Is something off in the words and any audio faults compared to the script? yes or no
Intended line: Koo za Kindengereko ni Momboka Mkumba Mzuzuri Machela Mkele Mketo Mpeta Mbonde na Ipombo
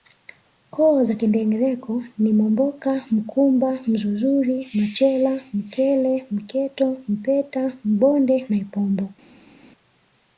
no